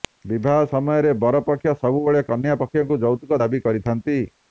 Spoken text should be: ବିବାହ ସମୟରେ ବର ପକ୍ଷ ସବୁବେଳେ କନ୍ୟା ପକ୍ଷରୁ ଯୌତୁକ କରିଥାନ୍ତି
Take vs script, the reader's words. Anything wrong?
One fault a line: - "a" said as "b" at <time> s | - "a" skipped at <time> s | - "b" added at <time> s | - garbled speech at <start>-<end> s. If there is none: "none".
- "ଦାବି" added at 3.4 s